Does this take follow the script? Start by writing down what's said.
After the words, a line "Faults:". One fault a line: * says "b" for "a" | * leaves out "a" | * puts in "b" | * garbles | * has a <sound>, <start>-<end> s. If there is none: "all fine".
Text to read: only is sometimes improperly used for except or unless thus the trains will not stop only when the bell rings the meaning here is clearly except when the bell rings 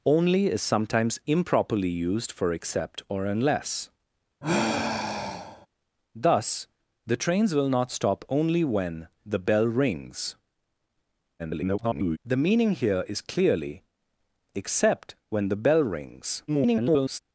only is sometimes improperly used for except or unless thus the trains will not stop only when the bell rings [garbled] the meaning here is clearly except when the bell rings [garbled]
Faults:
* has a sigh, 4.4-5.7 s
* garbles
* garbles